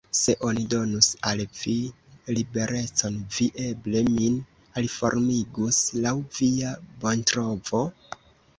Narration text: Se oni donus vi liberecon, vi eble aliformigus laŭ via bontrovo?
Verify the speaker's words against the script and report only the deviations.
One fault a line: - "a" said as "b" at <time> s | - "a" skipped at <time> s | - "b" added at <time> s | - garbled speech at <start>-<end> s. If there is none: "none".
- "al" added at 1.3 s
- "min" added at 4.1 s